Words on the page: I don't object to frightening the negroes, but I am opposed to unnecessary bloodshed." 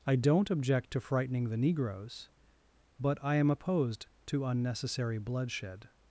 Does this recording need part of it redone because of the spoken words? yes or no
no